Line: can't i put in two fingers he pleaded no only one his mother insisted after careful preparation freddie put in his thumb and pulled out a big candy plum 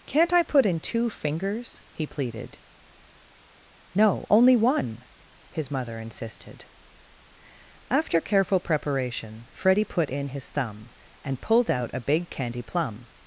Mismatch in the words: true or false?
false